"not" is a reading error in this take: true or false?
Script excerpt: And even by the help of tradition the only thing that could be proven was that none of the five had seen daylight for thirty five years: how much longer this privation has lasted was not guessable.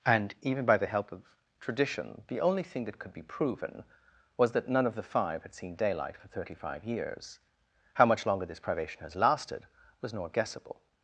true